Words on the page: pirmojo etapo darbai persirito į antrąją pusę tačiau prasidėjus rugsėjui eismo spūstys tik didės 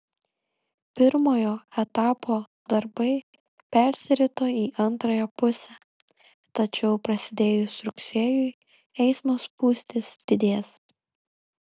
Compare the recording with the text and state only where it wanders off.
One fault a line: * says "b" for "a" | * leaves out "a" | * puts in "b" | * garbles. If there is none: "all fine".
* leaves out "tik"